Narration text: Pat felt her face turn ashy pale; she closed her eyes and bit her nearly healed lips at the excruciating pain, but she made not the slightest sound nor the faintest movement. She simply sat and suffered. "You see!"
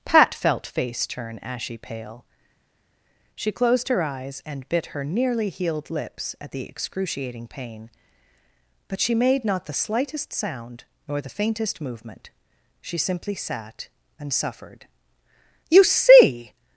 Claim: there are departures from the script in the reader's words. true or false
true